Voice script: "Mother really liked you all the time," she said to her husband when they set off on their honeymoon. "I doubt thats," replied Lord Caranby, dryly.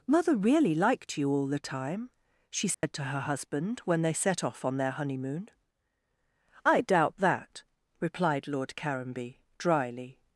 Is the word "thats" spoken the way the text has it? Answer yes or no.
no